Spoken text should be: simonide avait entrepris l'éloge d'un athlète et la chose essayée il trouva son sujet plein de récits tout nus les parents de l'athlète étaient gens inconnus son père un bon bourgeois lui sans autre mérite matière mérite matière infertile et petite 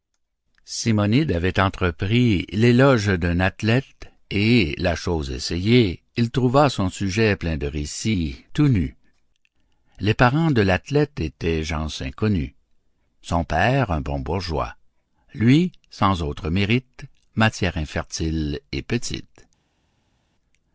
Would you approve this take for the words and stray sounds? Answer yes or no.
no